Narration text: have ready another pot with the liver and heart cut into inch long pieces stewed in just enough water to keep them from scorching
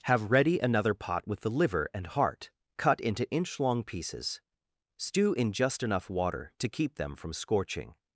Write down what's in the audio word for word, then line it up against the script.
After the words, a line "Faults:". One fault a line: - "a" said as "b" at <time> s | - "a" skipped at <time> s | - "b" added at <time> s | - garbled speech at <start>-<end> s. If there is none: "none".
have ready another pot with the liver and heart cut into inch long pieces stew in just enough water to keep them from scorching
Faults:
- "stewed" said as "stew" at 5.0 s